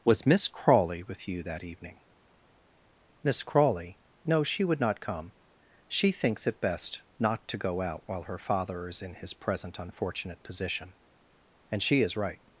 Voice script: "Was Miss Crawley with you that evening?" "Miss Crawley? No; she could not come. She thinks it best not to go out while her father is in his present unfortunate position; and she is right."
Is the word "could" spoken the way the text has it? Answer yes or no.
no